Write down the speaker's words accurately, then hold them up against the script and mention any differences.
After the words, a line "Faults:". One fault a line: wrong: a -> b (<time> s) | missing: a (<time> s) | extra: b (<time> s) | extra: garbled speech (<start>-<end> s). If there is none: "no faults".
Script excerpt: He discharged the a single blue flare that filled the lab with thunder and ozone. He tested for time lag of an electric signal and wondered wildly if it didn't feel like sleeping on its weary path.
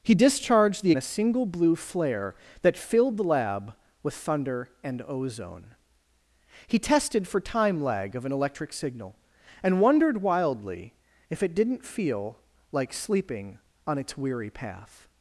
He discharged the a single blue flare that filled the lab with thunder and ozone. He tested for time lag of an electric signal and wondered wildly if it didn't feel like sleeping on its weary path.
Faults:
no faults